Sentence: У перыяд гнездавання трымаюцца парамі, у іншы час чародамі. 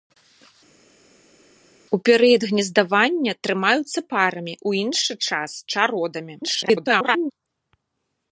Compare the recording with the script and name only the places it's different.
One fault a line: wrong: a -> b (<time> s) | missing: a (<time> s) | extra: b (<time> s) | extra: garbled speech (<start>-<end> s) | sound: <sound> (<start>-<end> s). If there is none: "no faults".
extra: garbled speech (6.4-7.3 s)